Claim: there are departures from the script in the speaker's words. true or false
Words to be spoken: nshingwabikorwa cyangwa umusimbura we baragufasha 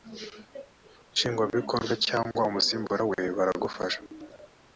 false